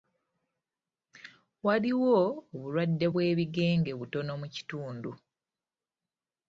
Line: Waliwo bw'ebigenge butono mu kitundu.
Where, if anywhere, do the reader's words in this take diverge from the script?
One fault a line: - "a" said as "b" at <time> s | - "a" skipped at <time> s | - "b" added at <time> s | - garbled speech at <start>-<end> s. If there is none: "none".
- "obulwadde" added at 2.5 s